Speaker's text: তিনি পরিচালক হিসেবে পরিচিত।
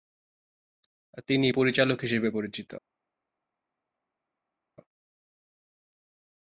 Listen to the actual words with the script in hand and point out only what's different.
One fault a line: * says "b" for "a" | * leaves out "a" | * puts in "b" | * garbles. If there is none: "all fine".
all fine